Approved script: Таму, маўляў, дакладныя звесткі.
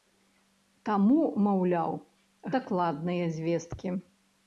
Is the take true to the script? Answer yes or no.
yes